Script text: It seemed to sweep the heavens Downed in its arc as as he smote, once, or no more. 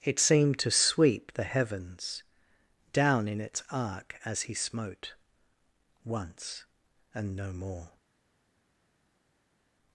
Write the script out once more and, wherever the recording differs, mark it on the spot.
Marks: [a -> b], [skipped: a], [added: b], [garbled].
It seemed to sweep the heavens [Downed -> Down] in its arc as [skipped: as] he smote, once, [or -> and] no more.